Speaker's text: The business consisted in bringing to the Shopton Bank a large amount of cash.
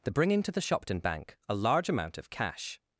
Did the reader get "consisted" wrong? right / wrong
wrong